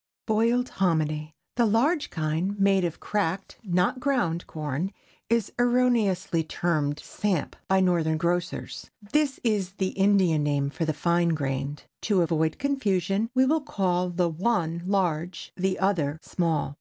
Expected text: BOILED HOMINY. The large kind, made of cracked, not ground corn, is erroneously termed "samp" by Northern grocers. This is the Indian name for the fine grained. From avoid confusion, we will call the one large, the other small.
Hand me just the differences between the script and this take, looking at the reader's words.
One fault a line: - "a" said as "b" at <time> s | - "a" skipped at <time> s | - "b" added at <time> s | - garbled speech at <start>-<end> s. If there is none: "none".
- "From" said as "To" at 12.0 s